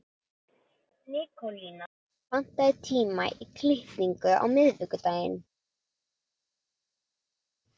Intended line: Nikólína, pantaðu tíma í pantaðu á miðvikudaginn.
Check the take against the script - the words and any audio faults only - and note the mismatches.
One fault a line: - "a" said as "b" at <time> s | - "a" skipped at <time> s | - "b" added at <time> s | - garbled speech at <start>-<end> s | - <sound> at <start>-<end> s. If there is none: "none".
- "pantaðu" said as "klippingu" at 3.6 s